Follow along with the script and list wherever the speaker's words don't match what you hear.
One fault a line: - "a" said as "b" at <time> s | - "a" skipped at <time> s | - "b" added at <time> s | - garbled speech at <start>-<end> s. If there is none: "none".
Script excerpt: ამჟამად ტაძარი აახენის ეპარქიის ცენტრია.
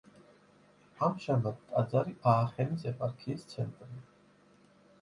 none